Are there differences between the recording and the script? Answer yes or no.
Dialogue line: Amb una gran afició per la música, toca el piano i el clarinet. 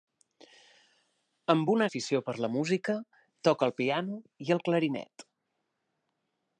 yes